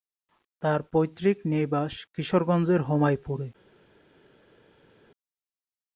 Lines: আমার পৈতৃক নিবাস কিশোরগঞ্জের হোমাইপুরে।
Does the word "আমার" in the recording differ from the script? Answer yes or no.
yes